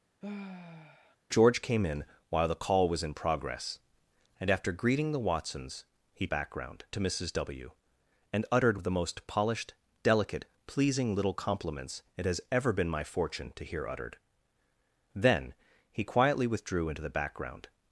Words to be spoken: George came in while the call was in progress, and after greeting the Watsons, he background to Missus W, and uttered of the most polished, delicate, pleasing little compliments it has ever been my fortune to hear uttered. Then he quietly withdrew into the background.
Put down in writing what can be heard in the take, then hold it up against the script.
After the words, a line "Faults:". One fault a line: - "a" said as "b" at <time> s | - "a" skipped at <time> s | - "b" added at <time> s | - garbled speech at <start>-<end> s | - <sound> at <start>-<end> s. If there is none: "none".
George came in while the call was in progress, and after greeting the Watsons, he background to Missus W, and uttered of the most polished, delicate, pleasing little compliments it has ever been my fortune to hear uttered. Then he quietly withdrew into the background.
Faults:
- sigh at 0.2-1.2 s